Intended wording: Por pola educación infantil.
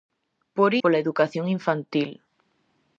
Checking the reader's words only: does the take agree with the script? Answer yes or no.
yes